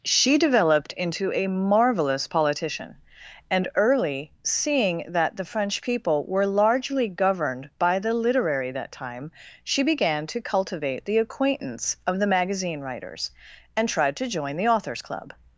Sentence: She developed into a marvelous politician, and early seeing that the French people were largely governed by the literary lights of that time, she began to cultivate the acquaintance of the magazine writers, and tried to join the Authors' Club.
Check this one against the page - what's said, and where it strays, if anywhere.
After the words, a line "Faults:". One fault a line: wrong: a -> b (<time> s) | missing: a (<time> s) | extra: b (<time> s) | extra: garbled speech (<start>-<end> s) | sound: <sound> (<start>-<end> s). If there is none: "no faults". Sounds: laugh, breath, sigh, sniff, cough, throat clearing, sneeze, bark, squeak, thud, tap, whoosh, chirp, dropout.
She developed into a marvelous politician, and early seeing that the French people were largely governed by the literary that time, she began to cultivate the acquaintance of the magazine writers, and tried to join the Authors' Club.
Faults:
missing: lights of (8.7 s)